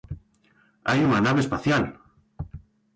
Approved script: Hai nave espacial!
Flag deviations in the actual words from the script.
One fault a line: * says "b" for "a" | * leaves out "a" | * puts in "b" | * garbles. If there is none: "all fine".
* puts in "unha"